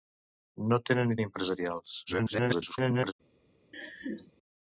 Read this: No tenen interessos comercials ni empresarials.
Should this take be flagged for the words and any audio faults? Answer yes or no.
yes